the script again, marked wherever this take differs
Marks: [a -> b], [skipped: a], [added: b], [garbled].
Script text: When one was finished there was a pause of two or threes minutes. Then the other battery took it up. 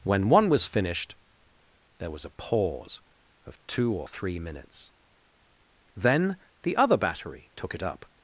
When one was finished there was a pause of two or [threes -> three] minutes. Then the other battery took it up.